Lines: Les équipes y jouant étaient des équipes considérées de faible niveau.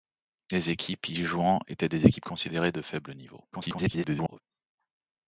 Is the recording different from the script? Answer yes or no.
yes